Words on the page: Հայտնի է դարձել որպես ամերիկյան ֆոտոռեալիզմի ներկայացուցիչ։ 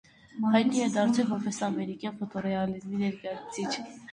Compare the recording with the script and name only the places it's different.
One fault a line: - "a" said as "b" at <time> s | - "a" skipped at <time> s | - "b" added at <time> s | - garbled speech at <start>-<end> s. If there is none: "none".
none